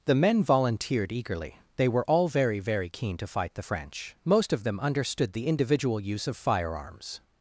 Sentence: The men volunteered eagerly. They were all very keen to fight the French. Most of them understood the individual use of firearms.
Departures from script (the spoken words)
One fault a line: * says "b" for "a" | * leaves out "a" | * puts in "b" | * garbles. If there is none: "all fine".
* puts in "very"